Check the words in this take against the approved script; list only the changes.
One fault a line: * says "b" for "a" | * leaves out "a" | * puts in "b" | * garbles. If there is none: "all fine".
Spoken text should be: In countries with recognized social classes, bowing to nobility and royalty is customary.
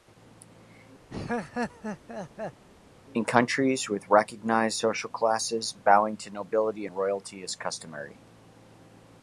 all fine